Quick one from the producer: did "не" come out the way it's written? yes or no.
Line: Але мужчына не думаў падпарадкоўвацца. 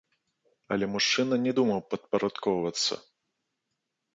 yes